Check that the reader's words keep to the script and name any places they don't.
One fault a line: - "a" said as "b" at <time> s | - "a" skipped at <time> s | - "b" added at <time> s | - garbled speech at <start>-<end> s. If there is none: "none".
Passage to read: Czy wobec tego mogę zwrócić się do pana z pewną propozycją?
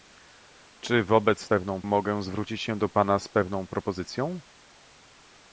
- "tego" said as "pewną" at 1.4 s